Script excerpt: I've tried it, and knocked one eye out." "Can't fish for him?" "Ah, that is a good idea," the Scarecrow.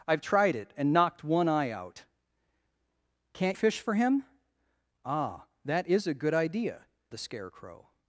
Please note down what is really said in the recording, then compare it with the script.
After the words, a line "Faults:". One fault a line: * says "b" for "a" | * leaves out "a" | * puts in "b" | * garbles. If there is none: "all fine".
I've tried it, and knocked one eye out." "Can't fish for him?" "Ah, that is a good idea," the Scarecrow.
Faults:
all fine